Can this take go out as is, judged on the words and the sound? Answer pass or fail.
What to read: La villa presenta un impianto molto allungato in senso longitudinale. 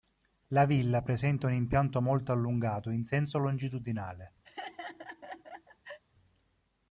fail